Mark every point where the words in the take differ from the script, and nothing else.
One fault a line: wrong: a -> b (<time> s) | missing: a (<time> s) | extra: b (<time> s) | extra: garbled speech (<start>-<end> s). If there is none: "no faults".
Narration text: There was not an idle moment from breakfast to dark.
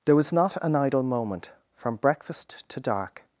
no faults